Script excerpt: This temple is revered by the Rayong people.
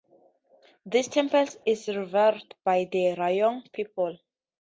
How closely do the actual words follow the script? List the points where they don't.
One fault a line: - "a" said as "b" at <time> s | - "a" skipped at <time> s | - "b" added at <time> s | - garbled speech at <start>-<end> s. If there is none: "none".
none